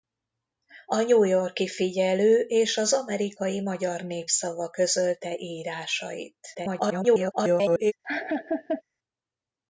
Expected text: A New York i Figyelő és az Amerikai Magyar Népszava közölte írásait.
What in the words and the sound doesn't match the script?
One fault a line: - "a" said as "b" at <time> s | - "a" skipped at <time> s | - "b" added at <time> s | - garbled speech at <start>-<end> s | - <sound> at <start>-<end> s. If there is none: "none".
- garbled speech at 6.5-7.9 s
- laugh at 8.0-8.8 s